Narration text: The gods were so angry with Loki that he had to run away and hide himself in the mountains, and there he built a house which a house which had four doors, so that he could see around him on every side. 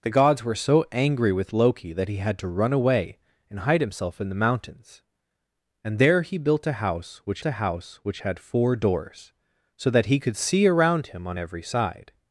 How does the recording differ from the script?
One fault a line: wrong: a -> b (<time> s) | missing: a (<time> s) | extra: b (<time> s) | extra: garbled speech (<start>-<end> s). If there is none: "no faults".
no faults